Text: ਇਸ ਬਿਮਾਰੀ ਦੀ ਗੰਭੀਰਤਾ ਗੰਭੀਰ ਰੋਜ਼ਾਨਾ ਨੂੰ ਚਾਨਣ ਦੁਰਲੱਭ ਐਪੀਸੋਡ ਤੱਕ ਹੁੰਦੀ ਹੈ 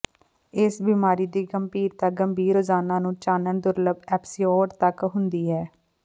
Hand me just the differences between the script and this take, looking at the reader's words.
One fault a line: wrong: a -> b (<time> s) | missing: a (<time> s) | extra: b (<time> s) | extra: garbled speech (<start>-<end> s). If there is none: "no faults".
no faults